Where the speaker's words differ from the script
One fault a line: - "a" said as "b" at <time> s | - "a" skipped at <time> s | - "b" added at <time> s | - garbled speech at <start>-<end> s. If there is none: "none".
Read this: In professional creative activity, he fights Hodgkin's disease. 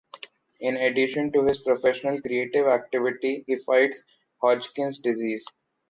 - "addition to his" added at 0.8 s